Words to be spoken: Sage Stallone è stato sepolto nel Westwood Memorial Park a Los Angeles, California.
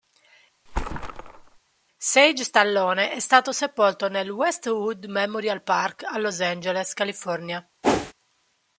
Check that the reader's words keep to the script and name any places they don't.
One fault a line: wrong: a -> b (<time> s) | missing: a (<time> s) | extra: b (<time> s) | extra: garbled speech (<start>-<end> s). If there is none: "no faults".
no faults